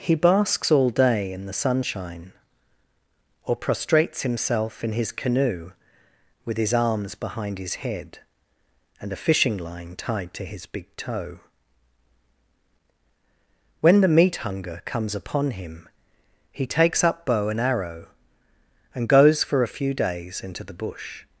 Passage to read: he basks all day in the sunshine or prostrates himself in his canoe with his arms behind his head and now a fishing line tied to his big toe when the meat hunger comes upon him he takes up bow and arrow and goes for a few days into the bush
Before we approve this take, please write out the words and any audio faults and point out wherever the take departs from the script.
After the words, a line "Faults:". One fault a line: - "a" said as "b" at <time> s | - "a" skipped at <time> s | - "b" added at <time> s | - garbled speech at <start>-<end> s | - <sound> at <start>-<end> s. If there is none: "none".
he basks all day in the sunshine or prostrates himself in his canoe with his arms behind his head and a fishing line tied to his big toe when the meat hunger comes upon him he takes up bow and arrow and goes for a few days into the bush
Faults:
- "now" skipped at 9.1 s